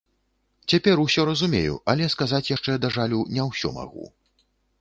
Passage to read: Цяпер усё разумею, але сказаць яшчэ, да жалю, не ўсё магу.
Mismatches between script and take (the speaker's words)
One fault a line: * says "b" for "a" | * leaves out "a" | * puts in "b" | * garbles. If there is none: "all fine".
all fine